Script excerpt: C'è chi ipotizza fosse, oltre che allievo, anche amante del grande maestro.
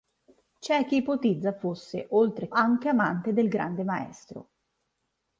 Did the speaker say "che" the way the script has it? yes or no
no